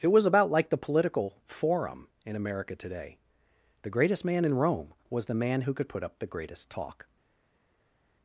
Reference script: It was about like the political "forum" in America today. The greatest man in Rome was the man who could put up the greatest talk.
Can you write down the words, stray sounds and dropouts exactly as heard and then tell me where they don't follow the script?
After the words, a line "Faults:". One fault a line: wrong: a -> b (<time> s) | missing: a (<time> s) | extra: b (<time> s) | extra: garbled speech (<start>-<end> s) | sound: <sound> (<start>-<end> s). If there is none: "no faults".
It was about like the political "forum" in America today. The greatest man in Rome was the man who could put up the greatest talk.
Faults:
no faults